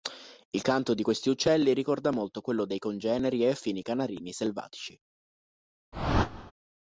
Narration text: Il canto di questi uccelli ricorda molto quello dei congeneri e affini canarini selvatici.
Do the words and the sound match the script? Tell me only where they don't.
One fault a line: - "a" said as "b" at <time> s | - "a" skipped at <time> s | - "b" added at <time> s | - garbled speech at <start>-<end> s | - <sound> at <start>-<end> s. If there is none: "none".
- whoosh at 5.9-6.5 s